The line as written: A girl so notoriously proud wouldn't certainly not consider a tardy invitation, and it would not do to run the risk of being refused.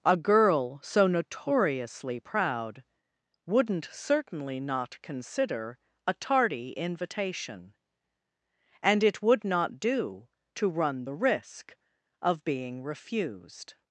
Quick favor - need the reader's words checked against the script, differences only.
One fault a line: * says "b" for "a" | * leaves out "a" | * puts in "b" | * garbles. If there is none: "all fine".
all fine